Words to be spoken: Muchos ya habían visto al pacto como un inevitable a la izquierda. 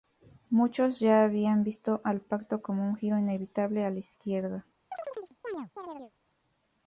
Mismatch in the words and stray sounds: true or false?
true